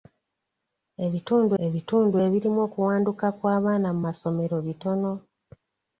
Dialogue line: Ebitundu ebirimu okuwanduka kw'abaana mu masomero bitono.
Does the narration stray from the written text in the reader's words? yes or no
yes